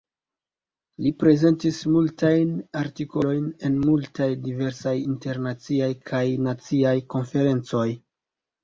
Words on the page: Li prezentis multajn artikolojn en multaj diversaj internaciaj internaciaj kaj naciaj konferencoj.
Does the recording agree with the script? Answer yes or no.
no